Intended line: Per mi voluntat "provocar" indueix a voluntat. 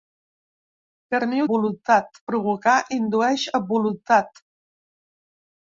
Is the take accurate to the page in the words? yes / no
yes